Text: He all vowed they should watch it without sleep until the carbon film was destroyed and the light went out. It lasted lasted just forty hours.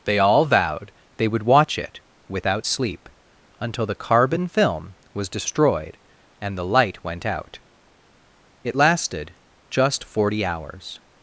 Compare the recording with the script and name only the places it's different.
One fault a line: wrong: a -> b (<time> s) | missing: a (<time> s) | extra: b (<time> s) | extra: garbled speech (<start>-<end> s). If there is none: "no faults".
wrong: He -> They (0.1 s)
wrong: should -> would (1.3 s)
missing: lasted (9.3 s)